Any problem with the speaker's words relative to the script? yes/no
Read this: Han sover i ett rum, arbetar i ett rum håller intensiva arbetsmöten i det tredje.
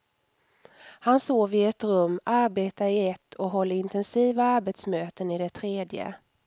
yes